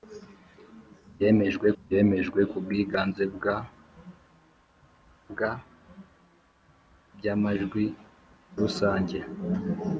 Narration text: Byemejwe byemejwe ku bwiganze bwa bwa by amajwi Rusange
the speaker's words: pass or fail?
pass